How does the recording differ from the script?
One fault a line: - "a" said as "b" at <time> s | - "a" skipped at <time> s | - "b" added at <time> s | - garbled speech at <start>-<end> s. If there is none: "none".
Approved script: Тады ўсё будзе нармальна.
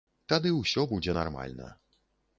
none